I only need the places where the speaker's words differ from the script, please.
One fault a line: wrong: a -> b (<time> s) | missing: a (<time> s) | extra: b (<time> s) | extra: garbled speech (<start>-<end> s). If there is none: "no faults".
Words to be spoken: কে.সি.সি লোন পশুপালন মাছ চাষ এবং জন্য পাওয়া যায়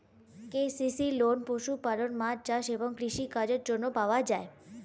extra: কৃষি কাজের (3.0 s)